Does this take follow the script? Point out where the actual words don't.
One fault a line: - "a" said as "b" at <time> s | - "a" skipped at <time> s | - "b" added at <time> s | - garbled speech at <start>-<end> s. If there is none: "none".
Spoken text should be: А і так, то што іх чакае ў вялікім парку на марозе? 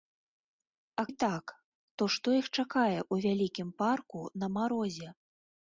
none